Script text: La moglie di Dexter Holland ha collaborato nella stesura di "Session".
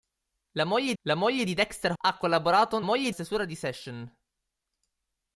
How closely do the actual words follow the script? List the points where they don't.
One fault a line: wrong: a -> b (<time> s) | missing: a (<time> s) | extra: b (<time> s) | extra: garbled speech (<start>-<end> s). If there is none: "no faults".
extra: la moglie (1.0 s)
missing: Holland (1.9 s)
wrong: nella -> moglie (2.8 s)